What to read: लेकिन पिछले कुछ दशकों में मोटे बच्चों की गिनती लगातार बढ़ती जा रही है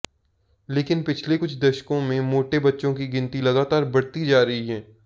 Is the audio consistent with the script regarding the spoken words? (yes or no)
yes